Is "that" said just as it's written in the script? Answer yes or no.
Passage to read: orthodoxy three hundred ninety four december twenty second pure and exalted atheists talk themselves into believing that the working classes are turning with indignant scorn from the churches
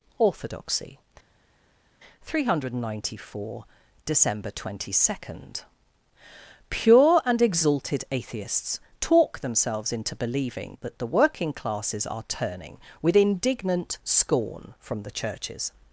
yes